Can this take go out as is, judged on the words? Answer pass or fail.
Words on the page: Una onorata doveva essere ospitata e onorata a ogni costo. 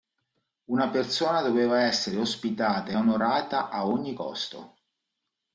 fail